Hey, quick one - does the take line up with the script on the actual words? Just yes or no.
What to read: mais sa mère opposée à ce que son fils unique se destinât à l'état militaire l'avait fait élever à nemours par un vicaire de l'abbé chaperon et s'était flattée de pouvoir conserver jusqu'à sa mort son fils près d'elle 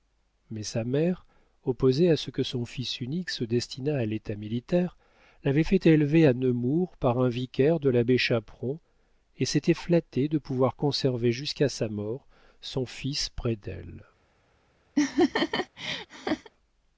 yes